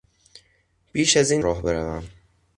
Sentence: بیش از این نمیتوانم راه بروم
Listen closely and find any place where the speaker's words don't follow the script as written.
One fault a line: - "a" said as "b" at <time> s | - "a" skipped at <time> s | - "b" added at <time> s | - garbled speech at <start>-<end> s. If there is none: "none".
- "نمیتوانم" skipped at 1.4 s